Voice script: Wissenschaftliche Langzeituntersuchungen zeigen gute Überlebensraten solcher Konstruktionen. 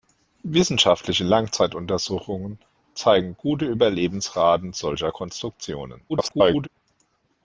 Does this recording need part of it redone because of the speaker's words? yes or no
yes